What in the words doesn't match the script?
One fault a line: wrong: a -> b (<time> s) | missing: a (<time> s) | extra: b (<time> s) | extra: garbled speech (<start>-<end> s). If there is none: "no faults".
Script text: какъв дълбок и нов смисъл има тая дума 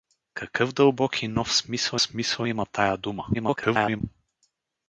extra: смисъл (2.0 s)
extra: garbled speech (3.3-4.0 s)